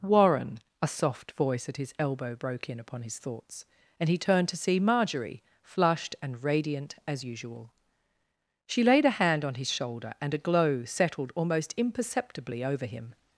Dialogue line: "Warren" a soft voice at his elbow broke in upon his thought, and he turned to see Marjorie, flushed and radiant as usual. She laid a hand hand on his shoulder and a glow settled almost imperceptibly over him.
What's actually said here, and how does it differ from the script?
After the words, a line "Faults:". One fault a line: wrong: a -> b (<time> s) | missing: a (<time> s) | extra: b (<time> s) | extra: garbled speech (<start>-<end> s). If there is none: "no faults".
"Warren" a soft voice at his elbow broke in upon his thoughts, and he turned to see Marjorie, flushed and radiant as usual. She laid a hand on his shoulder and a glow settled almost imperceptibly over him.
Faults:
wrong: thought -> thoughts (3.2 s)
missing: hand (9.4 s)